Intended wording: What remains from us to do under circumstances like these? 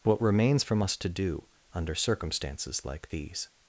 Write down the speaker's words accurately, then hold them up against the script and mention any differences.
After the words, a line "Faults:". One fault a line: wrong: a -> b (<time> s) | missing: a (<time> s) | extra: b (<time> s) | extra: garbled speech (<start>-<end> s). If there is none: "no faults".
What remains from us to do under circumstances like these?
Faults:
no faults